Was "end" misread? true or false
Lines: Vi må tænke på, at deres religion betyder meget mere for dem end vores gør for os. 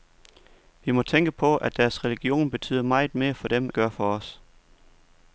true